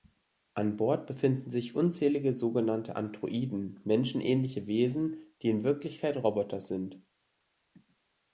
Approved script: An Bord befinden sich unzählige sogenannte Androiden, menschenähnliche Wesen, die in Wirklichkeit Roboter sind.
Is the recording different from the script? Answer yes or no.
no